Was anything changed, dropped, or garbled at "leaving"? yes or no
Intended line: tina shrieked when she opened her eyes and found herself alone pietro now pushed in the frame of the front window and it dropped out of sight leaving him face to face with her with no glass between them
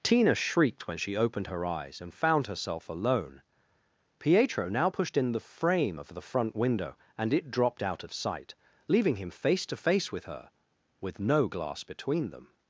no